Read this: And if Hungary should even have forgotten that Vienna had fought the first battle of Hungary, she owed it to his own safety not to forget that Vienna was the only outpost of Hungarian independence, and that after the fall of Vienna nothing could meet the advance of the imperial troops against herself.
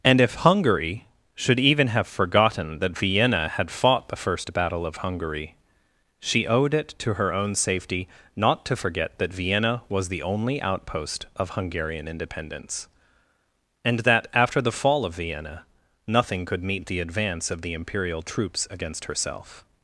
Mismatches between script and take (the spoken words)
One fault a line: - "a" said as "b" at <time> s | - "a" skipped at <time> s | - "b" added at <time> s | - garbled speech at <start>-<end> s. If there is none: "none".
- "his" said as "her" at 7.1 s